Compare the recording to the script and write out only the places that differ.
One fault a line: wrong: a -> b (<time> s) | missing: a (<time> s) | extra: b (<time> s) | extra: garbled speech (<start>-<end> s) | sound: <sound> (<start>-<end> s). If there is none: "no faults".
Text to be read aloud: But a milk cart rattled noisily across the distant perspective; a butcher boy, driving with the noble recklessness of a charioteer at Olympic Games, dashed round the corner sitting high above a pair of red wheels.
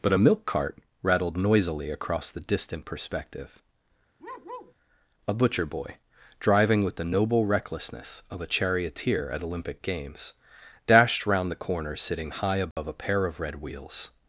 sound: bark (4.2-4.7 s)
sound: dropout (12.7-12.8 s)